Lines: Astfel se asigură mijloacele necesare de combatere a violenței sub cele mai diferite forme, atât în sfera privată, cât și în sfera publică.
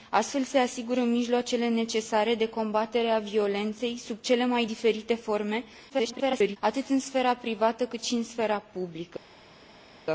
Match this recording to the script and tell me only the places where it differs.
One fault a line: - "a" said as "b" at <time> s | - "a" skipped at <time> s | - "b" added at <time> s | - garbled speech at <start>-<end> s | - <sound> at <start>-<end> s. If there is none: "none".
- garbled speech at 5.9-6.6 s